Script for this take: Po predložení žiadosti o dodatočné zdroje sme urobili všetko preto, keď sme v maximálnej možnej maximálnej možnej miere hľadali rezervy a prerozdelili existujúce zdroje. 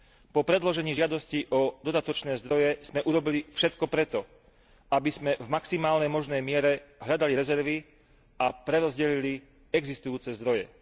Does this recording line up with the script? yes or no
no